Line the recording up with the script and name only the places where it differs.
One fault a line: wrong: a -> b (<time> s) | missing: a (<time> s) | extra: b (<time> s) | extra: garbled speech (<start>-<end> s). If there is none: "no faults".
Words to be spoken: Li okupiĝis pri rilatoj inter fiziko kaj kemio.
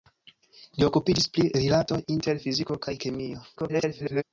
extra: garbled speech (3.6-4.2 s)